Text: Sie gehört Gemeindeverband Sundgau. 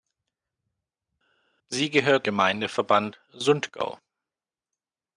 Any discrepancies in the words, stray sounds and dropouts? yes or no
no